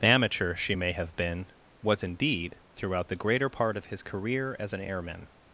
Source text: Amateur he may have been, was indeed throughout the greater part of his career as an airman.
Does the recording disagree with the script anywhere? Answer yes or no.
yes